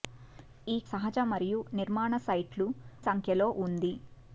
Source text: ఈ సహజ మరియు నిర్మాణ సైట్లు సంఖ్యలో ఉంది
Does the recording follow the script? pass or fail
pass